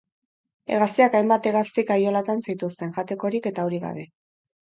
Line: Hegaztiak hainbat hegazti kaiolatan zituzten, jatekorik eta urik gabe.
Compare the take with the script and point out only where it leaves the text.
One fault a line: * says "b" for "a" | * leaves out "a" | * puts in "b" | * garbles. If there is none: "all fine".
all fine